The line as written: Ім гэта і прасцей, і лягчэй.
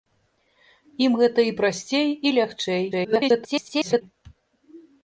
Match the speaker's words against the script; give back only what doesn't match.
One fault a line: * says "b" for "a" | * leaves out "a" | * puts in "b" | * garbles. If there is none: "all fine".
* garbles